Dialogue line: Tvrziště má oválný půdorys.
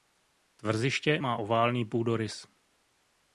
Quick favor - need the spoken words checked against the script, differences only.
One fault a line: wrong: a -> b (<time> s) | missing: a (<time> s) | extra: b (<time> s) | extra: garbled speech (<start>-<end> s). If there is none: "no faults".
no faults